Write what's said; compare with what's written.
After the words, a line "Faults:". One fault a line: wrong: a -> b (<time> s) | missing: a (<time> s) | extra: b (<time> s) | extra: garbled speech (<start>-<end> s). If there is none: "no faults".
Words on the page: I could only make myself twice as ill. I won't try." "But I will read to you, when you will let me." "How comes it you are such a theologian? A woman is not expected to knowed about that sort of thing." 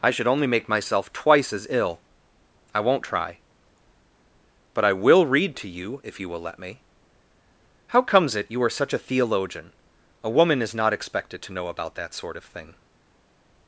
I should only make myself twice as ill. I won't try." "But I will read to you, if you will let me." "How comes it you are such a theologian? A woman is not expected to know about that sort of thing."
Faults:
wrong: could -> should (0.1 s)
wrong: when -> if (6.0 s)
wrong: knowed -> know (11.5 s)